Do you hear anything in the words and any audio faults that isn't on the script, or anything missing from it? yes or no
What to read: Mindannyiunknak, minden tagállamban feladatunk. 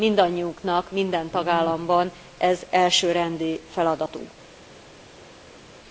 yes